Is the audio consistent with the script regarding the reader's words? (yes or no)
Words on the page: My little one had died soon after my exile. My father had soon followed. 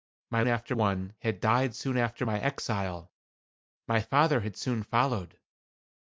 no